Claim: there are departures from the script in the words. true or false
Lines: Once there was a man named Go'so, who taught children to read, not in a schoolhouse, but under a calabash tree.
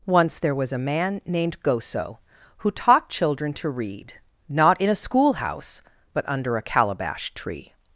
false